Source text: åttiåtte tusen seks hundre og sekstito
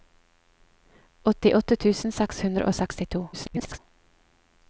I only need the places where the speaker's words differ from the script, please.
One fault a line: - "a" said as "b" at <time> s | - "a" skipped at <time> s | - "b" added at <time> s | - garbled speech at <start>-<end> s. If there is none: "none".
- garbled speech at 3.3-3.8 s